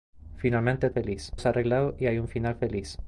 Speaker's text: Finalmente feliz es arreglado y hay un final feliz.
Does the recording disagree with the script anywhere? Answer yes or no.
no